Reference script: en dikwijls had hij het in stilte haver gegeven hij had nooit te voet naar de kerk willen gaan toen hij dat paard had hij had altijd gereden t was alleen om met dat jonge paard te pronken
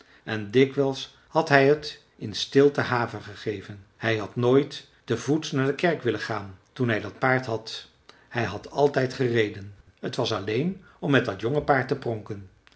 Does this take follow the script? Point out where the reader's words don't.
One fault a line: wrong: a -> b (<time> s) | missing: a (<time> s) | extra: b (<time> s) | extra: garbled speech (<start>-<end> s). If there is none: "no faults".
no faults